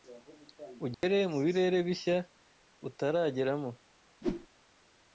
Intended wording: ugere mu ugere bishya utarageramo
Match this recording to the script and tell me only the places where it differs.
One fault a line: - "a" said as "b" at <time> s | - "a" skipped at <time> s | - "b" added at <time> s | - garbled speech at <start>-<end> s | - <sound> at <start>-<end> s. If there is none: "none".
- dropout at 0.9-1.0 s
- "ugere" said as "birere" at 1.4 s
- whoosh at 4.2-4.5 s